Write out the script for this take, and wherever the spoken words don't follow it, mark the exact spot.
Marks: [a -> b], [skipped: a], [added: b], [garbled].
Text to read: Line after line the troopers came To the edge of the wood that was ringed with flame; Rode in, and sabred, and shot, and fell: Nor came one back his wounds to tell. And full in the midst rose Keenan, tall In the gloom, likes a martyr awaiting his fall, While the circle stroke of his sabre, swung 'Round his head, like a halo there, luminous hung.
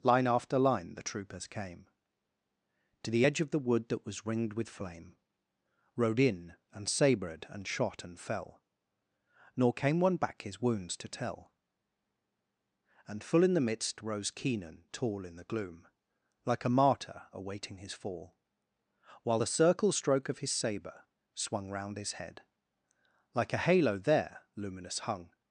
Line after line the troopers came To the edge of the wood that was ringed with flame; Rode in, and sabred, and shot, and fell: Nor came one back his wounds to tell. And full in the midst rose Keenan, tall In the gloom, [likes -> like] a martyr awaiting his fall, While the circle stroke of his sabre, swung 'Round his head, like a halo there, luminous hung.